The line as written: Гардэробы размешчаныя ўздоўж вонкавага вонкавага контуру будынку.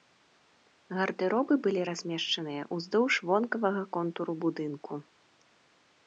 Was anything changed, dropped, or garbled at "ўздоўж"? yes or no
no